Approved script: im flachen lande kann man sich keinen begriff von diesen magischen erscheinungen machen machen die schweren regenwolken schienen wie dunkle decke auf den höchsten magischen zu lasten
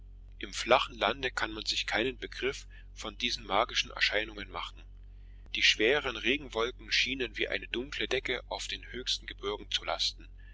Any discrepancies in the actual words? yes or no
yes